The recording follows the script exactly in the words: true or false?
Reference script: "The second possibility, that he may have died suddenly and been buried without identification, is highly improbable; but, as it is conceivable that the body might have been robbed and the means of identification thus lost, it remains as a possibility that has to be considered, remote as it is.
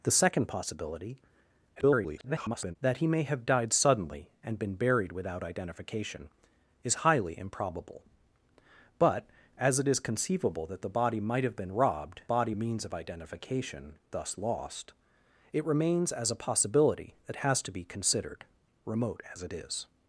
false